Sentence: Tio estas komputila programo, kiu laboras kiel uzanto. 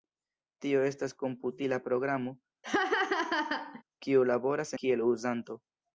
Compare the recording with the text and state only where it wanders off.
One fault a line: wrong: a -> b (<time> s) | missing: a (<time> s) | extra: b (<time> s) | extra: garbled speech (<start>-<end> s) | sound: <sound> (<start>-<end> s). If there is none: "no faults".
sound: laugh (2.6-3.8 s)